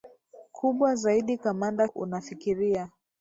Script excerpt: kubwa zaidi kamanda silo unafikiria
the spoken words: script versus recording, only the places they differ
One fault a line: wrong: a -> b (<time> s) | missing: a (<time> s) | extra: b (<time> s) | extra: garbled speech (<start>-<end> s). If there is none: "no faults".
missing: silo (1.9 s)